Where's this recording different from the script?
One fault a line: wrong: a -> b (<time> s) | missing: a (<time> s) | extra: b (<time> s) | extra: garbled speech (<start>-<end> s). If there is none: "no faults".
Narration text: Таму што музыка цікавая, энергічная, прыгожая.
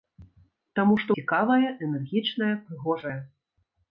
missing: музыка (1.1 s)